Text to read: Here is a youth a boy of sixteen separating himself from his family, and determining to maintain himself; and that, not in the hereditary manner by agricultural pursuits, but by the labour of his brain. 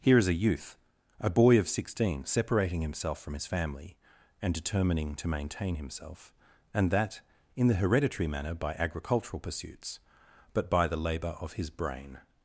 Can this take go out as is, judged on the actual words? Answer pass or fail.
fail